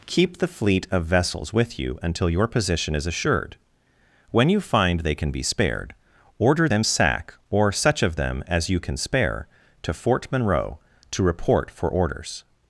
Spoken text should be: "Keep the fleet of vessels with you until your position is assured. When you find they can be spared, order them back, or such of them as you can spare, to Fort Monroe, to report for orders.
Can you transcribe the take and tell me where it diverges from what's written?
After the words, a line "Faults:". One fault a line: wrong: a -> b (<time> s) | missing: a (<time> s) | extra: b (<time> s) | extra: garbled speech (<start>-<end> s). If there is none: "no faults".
"Keep the fleet of vessels with you until your position is assured. When you find they can be spared, order them sack, or such of them as you can spare, to Fort Monroe, to report for orders.
Faults:
wrong: back -> sack (6.8 s)